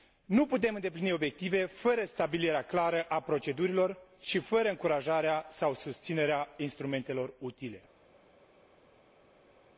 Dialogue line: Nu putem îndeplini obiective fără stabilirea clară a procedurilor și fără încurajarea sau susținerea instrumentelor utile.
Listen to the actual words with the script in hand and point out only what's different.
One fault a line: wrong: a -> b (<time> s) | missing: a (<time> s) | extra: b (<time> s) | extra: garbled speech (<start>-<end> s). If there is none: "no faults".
no faults